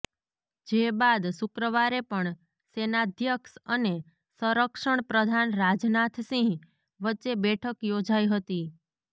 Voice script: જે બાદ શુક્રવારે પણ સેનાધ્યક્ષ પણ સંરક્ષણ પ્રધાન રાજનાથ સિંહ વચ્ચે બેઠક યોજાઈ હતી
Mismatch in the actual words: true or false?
true